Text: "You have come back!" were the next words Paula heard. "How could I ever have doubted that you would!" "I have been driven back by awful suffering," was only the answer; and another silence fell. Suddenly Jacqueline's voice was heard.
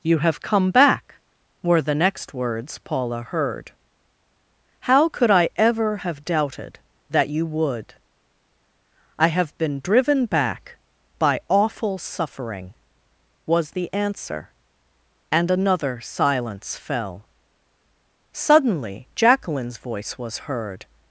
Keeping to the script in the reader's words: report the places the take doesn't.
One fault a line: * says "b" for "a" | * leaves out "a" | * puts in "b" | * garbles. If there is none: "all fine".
* leaves out "only"